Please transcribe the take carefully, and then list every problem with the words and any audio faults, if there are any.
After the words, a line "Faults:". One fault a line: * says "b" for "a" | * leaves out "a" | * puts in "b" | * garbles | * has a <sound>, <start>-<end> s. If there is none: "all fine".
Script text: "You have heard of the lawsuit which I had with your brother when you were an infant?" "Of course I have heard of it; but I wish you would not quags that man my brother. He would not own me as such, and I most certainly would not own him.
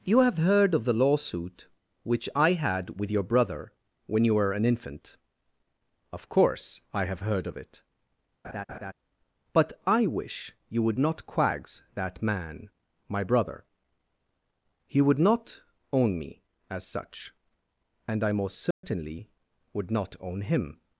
"You have heard of the lawsuit which I had with your brother when you were an infant?" "Of course I have heard of it; but I wish you would not quags that man my brother. He would not own me as such, and I most certainly would not own him.
Faults:
* has a laugh, 8.4-8.9 s
* has a dropout, 18.7-18.8 s